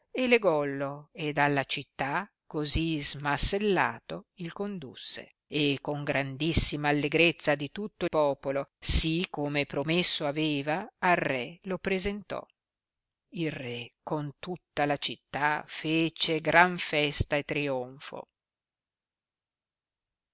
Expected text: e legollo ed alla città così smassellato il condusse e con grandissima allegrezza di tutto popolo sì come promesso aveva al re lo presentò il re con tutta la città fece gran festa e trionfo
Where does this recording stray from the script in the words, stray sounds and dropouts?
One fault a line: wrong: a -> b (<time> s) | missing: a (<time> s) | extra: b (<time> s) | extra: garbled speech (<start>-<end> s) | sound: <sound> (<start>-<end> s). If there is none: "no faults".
no faults